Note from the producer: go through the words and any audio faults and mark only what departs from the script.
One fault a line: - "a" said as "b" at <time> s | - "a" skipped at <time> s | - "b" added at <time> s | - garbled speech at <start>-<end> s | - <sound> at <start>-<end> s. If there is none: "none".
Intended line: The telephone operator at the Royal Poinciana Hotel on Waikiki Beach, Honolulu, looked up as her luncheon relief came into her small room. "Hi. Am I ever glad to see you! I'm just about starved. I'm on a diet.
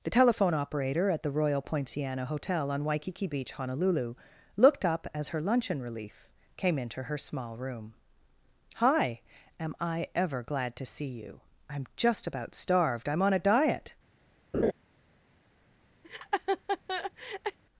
- laugh at 14.5-14.7 s
- laugh at 16.0-17.6 s